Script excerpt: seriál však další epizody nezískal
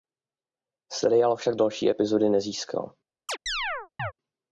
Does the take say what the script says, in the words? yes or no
yes